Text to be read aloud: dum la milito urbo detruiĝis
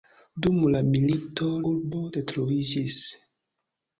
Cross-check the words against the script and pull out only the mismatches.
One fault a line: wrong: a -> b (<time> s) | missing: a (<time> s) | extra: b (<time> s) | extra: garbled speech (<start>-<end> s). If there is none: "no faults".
no faults